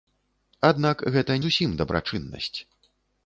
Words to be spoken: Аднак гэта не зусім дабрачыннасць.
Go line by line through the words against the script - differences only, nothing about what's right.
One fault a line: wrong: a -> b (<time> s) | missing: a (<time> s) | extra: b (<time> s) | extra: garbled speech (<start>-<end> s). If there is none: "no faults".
missing: не (1.4 s)